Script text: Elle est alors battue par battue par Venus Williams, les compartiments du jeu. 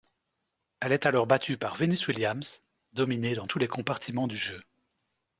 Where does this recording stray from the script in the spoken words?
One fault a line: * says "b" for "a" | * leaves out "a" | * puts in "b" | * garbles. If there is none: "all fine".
* says "Venus Williams dominée dans tous" for "battue par Venus Williams"